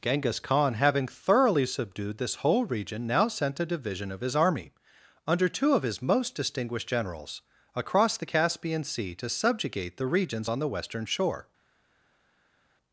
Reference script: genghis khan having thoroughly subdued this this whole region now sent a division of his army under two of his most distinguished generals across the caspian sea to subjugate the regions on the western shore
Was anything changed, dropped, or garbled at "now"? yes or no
no